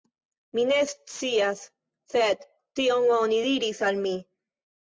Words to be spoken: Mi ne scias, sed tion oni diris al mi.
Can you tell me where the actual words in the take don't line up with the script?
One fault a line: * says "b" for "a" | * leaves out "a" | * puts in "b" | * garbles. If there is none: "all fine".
all fine